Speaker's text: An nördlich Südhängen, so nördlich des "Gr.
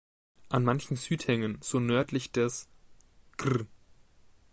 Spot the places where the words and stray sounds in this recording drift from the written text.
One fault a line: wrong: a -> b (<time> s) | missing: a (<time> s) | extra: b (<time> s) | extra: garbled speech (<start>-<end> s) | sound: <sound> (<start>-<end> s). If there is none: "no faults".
wrong: nördlich -> manchen (0.6 s)